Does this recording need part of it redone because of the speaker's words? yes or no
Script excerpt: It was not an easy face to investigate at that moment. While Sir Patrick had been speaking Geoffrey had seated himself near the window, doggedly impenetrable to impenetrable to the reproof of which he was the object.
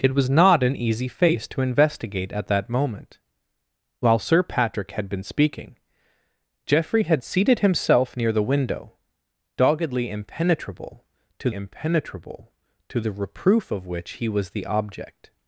no